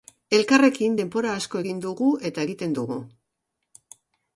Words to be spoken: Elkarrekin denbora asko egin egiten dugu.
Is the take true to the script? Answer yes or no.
no